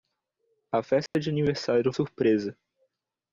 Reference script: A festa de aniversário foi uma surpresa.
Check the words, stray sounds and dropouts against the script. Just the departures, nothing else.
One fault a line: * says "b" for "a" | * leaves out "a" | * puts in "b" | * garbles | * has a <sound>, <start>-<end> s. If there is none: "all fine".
* has a dropout, 1.1-1.1 s
* leaves out "foi uma"